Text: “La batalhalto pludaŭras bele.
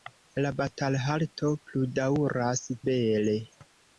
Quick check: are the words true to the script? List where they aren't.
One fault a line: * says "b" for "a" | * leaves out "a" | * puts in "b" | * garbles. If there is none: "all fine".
all fine